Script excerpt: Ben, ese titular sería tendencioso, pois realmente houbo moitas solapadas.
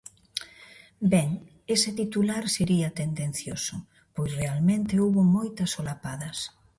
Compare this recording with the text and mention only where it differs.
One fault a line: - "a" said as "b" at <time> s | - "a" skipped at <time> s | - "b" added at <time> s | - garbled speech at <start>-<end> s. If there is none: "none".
none